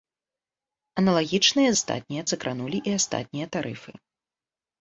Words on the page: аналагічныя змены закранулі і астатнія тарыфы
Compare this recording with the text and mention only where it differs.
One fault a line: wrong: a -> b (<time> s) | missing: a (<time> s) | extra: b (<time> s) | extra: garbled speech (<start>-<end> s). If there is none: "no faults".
wrong: змены -> астатнія (1.8 s)